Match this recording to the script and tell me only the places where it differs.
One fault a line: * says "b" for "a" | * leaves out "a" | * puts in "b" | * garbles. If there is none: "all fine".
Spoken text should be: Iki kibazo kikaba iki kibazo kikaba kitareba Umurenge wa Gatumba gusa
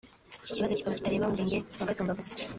* leaves out "iki kibazo kikaba"